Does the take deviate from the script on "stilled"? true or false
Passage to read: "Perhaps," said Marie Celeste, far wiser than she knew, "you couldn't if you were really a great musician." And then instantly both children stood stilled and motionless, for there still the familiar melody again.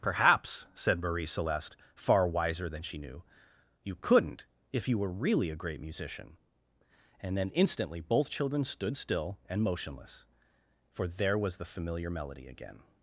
true